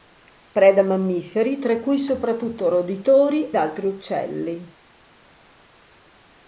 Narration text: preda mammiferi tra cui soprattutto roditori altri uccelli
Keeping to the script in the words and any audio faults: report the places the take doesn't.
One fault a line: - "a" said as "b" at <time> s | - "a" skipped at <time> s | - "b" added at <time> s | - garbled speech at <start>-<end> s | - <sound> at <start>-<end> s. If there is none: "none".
none